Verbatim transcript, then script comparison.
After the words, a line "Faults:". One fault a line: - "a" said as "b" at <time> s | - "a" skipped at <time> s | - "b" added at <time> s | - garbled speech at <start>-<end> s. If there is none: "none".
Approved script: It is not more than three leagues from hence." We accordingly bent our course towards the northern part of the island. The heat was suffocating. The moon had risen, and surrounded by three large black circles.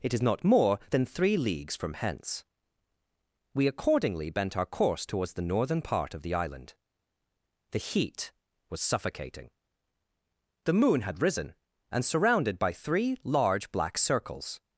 It is not more than three leagues from hence." We accordingly bent our course towards the northern part of the island. The heat was suffocating. The moon had risen, and surrounded by three large black circles.
Faults:
none